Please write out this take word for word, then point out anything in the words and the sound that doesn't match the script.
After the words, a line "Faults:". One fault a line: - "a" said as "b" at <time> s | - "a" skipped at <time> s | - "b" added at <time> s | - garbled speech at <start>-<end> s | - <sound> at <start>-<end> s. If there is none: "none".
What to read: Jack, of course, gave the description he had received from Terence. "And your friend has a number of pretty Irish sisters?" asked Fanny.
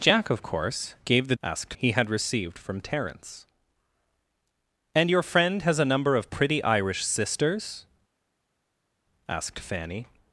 Jack, of course, gave the asked he had received from Terence. "And your friend has a number of pretty Irish sisters?" asked Fanny.
Faults:
- "description" said as "asked" at 1.4 s